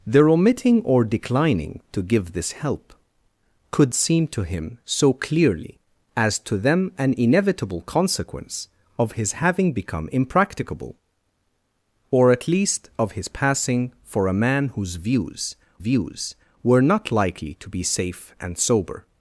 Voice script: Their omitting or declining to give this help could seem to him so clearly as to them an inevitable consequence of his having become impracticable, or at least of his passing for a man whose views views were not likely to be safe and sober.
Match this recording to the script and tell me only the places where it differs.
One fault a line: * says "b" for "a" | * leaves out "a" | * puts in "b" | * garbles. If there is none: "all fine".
all fine